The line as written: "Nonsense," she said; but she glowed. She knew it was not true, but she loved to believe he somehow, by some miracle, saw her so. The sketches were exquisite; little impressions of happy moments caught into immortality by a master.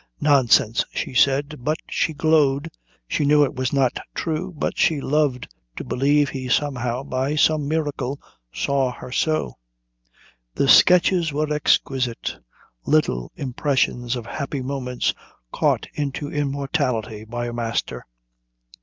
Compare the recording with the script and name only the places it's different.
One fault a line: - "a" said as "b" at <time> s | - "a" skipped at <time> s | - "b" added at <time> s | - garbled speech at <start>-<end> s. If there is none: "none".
none